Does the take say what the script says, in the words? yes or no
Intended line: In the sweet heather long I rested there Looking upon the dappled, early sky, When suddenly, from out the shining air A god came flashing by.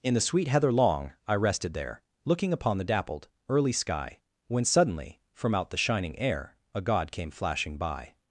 yes